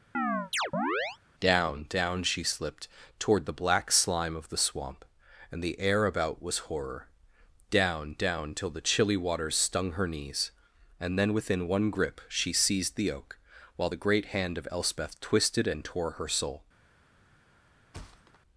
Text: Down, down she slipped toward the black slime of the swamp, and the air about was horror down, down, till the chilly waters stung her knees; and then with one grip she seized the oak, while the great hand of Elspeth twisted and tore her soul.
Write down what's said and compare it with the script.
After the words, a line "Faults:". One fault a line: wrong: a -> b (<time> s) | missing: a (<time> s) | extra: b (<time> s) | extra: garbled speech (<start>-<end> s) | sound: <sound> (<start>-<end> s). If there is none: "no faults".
Down, down she slipped toward the black slime of the swamp, and the air about was horror down, down, till the chilly waters stung her knees; and then within one grip she seized the oak, while the great hand of Elspeth twisted and tore her soul.
Faults:
sound: chirp (0.1-1.2 s)
wrong: with -> within (11.3 s)
sound: thud (17.9-18.4 s)